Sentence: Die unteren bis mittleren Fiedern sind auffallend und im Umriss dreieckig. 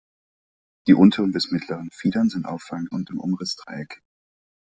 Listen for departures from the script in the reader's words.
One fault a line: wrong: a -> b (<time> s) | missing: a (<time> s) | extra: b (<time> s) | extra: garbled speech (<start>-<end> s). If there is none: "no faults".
no faults